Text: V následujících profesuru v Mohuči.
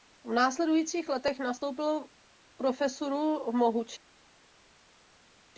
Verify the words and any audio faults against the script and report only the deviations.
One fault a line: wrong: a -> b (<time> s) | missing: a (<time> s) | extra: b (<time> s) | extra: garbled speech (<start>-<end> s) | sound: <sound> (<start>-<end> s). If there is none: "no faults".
extra: letech nastoupil (1.1 s)